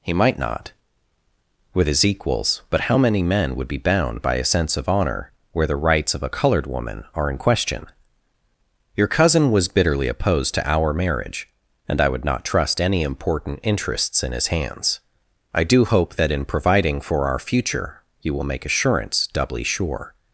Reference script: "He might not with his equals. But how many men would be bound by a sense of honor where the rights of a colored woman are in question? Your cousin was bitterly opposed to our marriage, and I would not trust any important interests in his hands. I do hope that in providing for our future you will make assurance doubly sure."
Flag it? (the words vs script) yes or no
no